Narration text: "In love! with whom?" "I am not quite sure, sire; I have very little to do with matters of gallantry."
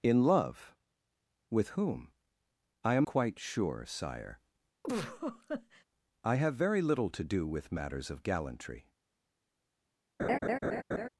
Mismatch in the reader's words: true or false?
true